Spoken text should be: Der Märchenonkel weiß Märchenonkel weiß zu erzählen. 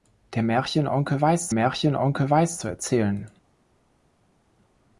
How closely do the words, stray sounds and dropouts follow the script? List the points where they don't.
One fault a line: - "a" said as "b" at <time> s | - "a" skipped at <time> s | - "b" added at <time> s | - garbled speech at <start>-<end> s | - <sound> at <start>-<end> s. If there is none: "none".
none